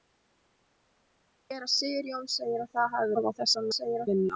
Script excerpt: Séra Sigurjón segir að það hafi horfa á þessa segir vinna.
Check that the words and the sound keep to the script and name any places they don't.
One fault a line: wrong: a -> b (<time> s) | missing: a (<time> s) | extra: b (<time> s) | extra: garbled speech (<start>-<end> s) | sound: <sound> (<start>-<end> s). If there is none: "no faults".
no faults